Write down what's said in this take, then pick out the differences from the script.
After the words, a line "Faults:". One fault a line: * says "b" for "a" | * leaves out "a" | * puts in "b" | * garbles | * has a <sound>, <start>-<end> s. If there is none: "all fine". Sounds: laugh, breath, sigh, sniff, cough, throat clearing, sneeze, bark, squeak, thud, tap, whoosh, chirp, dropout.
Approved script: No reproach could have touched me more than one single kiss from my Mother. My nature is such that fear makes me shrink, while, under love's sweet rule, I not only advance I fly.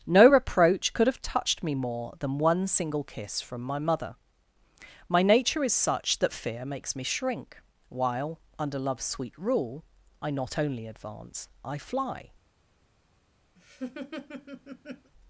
No reproach could have touched me more than one single kiss from my Mother. My nature is such that fear makes me shrink, while, under love's sweet rule, I not only advance I fly.
Faults:
* has a laugh, 13.6-15.1 s